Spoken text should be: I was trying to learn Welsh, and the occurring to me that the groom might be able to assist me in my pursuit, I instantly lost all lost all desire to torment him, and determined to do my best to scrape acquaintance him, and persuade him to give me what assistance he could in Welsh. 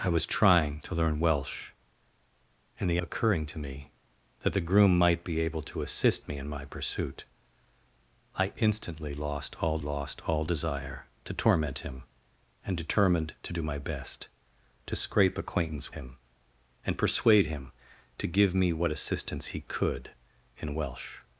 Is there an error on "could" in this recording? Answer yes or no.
no